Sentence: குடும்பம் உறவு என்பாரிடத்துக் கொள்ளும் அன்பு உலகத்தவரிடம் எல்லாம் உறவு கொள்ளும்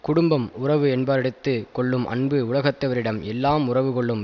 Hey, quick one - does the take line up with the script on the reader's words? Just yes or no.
yes